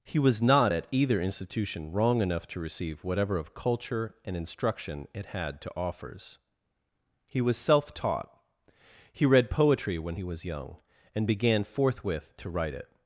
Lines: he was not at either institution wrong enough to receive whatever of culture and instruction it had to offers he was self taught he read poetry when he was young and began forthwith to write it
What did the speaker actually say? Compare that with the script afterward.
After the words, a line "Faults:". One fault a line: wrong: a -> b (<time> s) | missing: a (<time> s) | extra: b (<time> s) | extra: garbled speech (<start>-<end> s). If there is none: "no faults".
he was not at either institution wrong enough to receive whatever of culture and instruction it had to offers he was self taught he read poetry when he was young and began forthwith to write it
Faults:
no faults